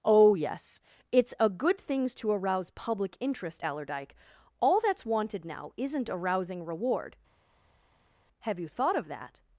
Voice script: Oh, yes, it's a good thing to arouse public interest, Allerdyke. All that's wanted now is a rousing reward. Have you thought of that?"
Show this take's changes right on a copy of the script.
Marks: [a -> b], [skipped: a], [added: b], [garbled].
Oh, yes, it's a good [thing -> things] to arouse public interest, Allerdyke. All that's wanted now [is -> isn't] a rousing reward. Have you thought of that?"